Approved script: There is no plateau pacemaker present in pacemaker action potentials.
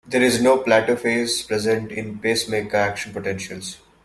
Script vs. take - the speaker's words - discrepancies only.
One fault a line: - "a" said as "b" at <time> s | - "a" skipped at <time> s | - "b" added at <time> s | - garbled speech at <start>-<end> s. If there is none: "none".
- "pacemaker" said as "phase" at 0.9 s